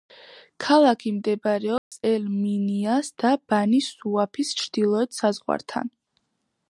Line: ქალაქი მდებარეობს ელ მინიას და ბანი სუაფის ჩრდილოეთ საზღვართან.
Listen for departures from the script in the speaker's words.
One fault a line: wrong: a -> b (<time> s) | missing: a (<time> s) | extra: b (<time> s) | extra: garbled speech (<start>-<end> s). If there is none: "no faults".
no faults